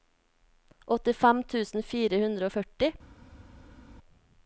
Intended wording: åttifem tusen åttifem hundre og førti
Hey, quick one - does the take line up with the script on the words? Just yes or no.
no